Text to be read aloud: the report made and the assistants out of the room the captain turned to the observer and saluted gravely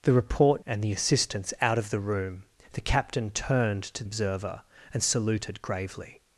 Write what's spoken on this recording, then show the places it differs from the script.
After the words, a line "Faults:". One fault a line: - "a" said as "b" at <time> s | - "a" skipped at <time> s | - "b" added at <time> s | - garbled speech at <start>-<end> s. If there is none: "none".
the report and the assistants out of the room the captain turned to observer and saluted gravely
Faults:
- "made" skipped at 0.7 s
- "the" skipped at 4.0 s